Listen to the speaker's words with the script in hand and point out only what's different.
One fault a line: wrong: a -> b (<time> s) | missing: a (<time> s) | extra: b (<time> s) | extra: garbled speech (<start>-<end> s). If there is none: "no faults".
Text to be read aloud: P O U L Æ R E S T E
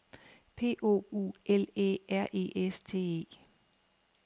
no faults